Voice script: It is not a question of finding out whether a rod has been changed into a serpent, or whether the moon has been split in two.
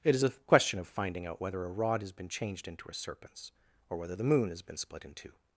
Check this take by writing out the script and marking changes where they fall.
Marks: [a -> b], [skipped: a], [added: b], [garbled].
It is [skipped: not] a question of finding out whether a rod has been changed into a [serpent, -> serpents] or whether the moon has been split in two.